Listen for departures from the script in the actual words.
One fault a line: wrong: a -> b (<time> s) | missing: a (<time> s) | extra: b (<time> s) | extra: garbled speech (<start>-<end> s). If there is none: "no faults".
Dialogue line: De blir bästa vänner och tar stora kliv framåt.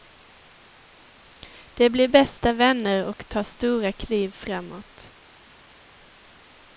no faults